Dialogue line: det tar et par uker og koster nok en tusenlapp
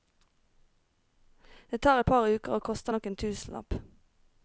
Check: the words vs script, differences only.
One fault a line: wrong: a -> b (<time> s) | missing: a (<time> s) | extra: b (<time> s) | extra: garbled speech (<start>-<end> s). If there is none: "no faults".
no faults